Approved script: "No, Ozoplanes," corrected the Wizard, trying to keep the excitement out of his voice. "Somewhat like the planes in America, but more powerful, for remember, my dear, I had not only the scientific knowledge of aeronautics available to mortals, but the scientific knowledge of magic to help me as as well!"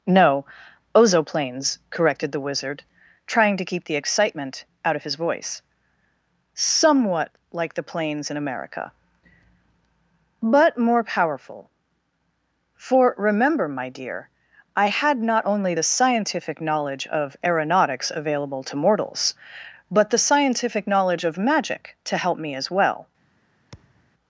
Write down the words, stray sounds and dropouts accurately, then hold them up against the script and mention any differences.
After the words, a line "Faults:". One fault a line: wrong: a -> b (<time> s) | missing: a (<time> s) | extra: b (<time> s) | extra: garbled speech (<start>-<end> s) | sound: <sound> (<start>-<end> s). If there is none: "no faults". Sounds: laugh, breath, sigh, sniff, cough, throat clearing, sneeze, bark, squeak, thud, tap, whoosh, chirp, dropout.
"No, Ozoplanes," corrected the Wizard, trying to keep the excitement out of his voice. "Somewhat like the planes in America, but more powerful, for remember, my dear, I had not only the scientific knowledge of aeronautics available to mortals, but the scientific knowledge of magic to help me as well!"
Faults:
missing: as (22.7 s)
sound: thud (23.7-24.1 s)